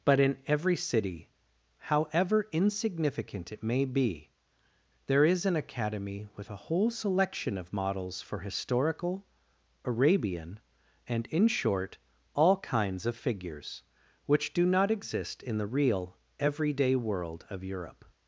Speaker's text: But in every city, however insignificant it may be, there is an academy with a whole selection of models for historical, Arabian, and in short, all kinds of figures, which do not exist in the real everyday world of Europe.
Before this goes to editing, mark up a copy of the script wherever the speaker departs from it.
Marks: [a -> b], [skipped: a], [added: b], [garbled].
But in every city, however insignificant it may be, there is an academy with a whole selection of models for historical, Arabian, and in short, all kinds of figures, which do not exist in the real everyday world of Europe.